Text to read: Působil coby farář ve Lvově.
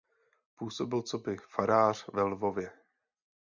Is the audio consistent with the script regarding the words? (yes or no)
yes